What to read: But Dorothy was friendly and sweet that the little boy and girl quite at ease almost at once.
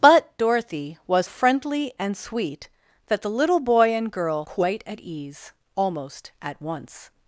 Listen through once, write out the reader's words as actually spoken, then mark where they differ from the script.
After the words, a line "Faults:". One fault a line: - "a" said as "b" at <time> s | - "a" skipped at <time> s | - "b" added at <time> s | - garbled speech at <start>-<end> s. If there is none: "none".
But Dorothy was friendly and sweet that the little boy and girl quite at ease almost at once.
Faults:
none